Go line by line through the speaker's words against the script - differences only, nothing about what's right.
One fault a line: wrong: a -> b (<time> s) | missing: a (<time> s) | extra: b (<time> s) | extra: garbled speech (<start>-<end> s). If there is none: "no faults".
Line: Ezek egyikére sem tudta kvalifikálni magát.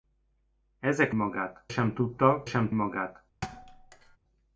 wrong: egyikére -> magát (1.1 s)
wrong: kvalifikálni -> sem (2.4 s)